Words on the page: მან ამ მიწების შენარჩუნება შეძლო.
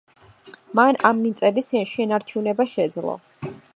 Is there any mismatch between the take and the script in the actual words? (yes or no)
no